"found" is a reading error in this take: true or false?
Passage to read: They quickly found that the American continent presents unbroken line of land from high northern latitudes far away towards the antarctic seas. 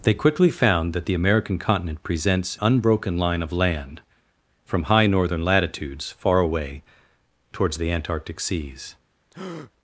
false